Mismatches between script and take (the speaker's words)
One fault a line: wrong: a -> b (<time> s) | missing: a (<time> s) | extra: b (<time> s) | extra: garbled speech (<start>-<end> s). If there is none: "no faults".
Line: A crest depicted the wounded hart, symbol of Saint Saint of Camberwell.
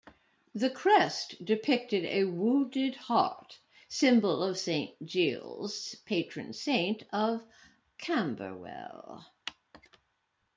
wrong: A -> The (0.6 s)
wrong: the -> a (2.1 s)
extra: Giles patron (5.0 s)